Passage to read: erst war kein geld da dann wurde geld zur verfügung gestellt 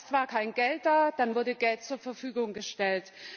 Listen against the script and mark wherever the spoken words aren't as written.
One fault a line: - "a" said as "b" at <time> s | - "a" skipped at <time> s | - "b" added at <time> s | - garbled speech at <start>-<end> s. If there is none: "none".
none